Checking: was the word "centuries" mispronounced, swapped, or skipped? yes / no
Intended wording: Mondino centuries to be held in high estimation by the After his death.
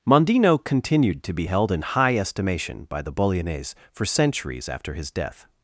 yes